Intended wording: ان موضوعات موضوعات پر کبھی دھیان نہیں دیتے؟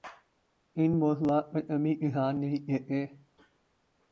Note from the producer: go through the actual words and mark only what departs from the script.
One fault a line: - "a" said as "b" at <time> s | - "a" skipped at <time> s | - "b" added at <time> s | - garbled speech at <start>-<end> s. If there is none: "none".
- "موضوعات" skipped at 1.4 s